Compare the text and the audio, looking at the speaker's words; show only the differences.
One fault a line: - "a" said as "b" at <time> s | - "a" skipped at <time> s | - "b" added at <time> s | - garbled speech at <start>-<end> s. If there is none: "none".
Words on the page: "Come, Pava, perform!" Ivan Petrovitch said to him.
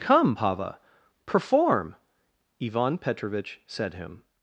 - "to" skipped at 3.9 s